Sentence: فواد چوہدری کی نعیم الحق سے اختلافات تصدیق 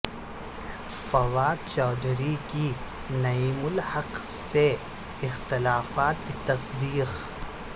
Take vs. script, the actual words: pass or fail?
pass